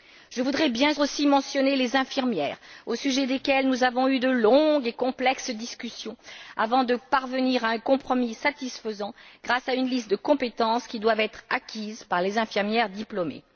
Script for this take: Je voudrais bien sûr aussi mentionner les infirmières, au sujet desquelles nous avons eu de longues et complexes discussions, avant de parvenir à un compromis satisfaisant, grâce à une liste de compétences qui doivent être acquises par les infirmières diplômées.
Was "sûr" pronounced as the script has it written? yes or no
no